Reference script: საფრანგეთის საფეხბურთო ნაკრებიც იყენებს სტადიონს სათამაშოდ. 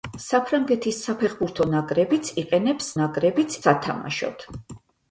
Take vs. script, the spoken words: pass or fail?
fail